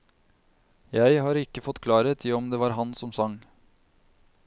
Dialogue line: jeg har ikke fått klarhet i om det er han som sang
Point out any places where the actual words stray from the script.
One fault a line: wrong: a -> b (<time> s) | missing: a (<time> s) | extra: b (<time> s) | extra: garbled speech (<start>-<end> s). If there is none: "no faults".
wrong: er -> var (2.6 s)